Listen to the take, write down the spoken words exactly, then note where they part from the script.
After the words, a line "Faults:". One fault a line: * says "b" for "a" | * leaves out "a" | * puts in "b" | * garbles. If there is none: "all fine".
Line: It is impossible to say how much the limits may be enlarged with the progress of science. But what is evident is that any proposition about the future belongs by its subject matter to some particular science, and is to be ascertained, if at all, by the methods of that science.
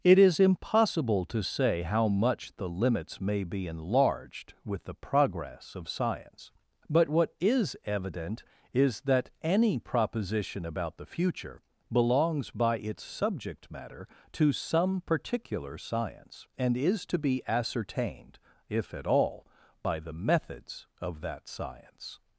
It is impossible to say how much the limits may be enlarged with the progress of science. But what is evident is that any proposition about the future belongs by its subject matter to some particular science, and is to be ascertained, if at all, by the methods of that science.
Faults:
all fine